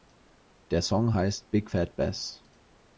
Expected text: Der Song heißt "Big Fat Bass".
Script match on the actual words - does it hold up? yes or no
yes